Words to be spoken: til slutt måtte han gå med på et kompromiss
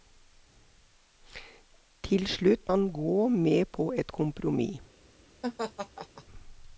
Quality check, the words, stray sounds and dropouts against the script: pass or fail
fail